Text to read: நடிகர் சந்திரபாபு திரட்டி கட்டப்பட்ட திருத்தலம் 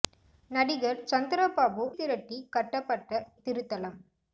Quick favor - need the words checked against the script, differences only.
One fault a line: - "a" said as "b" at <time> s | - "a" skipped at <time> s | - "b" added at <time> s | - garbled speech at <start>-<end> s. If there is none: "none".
none